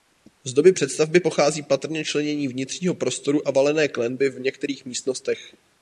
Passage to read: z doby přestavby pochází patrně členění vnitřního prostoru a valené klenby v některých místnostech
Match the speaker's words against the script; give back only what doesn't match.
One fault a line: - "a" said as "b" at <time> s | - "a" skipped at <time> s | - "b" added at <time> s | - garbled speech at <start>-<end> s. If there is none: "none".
none